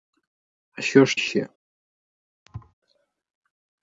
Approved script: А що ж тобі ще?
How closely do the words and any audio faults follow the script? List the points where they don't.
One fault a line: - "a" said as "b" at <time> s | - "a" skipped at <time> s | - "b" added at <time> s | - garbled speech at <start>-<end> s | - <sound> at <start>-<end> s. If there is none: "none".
- "тобі" skipped at 1.2 s
- thud at 2.5-2.7 s